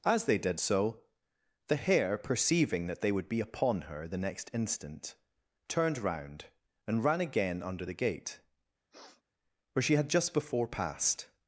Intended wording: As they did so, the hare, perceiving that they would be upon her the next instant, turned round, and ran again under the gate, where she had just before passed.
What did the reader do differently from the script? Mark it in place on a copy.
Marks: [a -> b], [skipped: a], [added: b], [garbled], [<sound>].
As they did so, the hare, perceiving that they would be upon her the next instant, turned round, and ran again under the gate, [sniff] where she had just before passed.